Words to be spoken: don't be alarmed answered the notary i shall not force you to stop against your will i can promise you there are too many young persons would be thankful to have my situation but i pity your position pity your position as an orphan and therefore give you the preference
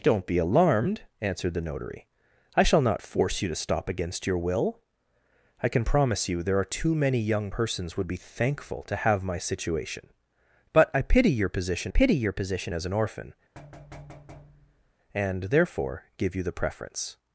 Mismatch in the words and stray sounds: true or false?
true